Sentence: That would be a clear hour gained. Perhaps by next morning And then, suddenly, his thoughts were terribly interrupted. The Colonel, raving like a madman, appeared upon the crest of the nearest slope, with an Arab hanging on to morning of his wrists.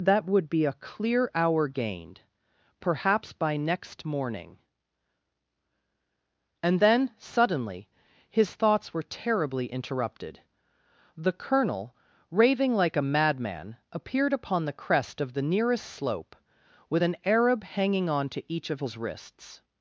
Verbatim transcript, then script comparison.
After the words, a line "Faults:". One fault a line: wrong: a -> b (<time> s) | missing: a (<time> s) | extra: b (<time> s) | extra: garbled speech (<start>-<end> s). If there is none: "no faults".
That would be a clear hour gained. Perhaps by next morning And then, suddenly, his thoughts were terribly interrupted. The Colonel, raving like a madman, appeared upon the crest of the nearest slope, with an Arab hanging on to each of his wrists.
Faults:
wrong: morning -> each (18.5 s)